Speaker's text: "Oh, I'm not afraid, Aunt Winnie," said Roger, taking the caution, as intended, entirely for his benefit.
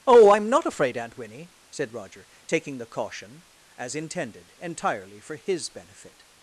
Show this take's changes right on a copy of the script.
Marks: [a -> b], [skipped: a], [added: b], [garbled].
"Oh, I'm not afraid, Aunt Winnie," said Roger, taking the caution, as intended, entirely for his benefit.